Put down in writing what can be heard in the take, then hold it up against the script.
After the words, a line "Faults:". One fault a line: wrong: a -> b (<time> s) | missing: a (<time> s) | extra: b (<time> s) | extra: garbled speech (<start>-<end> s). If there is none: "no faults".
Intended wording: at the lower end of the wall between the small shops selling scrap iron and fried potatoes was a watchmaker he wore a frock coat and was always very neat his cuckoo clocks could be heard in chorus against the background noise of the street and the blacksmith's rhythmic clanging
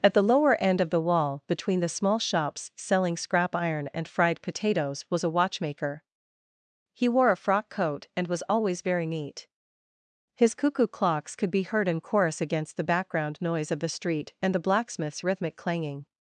at the lower end of the wall between the small shops selling scrap iron and fried potatoes was a watchmaker he wore a frock coat and was always very neat his cuckoo clocks could be heard in chorus against the background noise of the street and the blacksmith's rhythmic clanging
Faults:
no faults